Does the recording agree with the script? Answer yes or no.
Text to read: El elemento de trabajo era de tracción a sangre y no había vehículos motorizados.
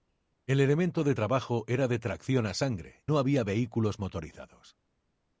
no